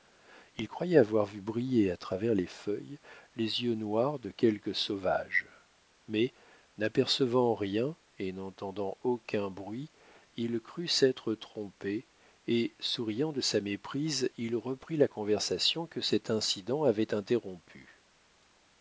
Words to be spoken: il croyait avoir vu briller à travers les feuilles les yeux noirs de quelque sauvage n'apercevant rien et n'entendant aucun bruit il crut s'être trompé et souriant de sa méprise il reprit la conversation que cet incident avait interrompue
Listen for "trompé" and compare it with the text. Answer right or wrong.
right